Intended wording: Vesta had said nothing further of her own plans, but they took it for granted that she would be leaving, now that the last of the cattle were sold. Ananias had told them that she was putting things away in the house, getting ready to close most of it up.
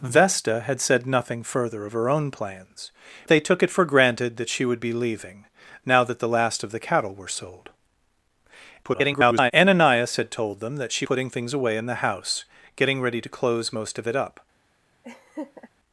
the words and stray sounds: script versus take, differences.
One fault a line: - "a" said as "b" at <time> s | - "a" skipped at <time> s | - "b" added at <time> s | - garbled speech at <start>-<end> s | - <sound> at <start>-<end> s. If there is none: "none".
- "but" skipped at 2.9 s
- garbled speech at 8.8-9.5 s
- "was" skipped at 11.1 s
- laugh at 15.0-15.7 s